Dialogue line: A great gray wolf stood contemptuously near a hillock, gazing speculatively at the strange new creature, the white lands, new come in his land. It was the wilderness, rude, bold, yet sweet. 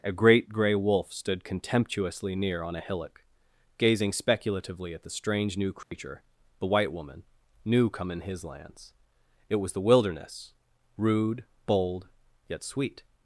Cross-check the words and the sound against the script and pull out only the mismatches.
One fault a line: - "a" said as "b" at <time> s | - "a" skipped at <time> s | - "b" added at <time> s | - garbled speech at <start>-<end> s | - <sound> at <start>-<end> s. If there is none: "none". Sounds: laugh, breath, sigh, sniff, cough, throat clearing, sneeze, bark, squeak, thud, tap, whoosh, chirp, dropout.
- "on" added at 2.6 s
- dropout at 5.8-5.9 s
- "lands" said as "woman" at 6.9 s
- "land" said as "lands" at 8.4 s